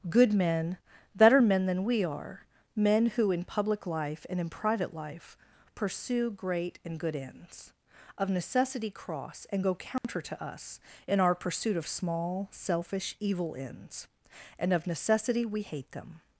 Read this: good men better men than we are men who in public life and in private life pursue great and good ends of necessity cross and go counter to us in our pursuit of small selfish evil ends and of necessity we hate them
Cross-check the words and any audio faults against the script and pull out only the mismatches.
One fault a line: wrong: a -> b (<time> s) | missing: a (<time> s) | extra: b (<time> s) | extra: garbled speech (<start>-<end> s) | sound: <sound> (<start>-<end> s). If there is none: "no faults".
sound: dropout (10.0-10.0 s)